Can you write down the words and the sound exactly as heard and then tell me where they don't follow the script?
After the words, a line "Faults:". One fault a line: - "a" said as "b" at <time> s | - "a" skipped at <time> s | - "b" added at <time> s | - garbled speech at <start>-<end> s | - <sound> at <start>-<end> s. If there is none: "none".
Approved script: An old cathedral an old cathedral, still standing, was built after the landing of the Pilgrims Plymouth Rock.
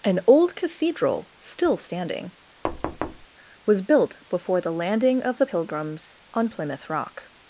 An old cathedral, still standing, was built before the landing of the Pilgrims on Plymouth Rock.
Faults:
- "an old cathedral" skipped at 1.3 s
- thud at 2.6-3.3 s
- "after" said as "before" at 4.3 s
- "on" added at 6.3 s